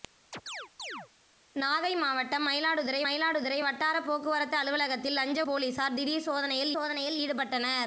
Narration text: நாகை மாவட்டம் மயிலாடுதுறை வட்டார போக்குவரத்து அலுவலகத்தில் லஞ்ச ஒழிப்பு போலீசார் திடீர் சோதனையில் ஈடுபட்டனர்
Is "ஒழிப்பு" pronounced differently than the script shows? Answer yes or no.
yes